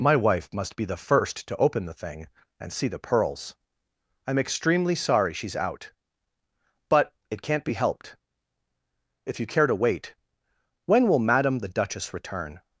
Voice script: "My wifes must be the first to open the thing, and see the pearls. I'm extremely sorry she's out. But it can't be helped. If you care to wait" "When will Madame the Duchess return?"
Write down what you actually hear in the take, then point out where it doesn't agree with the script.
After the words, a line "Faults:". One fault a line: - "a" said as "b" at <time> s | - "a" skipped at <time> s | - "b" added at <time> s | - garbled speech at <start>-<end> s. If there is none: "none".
"My wife must be the first to open the thing, and see the pearls. I'm extremely sorry she's out. But it can't be helped. If you care to wait" "When will Madame the Duchess return?"
Faults:
- "wifes" said as "wife" at 0.1 s